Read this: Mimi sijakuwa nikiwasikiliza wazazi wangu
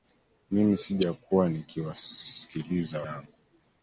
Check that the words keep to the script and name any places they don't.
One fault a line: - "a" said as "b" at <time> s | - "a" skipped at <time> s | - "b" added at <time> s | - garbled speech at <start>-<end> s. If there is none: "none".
- "wazazi" skipped at 3.0 s